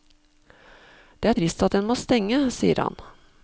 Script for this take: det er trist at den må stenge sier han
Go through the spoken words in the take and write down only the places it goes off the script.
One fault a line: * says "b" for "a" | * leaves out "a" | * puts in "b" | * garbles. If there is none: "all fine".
all fine